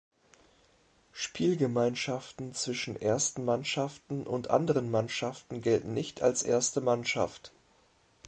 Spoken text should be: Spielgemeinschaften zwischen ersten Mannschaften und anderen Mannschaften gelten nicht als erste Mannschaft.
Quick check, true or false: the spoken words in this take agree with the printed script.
true